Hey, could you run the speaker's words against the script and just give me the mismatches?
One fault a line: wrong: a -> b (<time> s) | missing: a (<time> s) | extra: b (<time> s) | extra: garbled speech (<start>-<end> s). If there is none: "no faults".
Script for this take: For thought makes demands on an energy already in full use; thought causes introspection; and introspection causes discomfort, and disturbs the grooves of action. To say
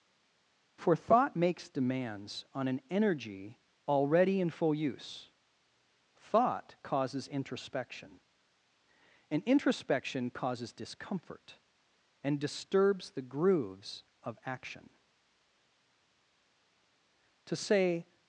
no faults